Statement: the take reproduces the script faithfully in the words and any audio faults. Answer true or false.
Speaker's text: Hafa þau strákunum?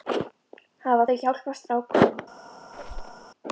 false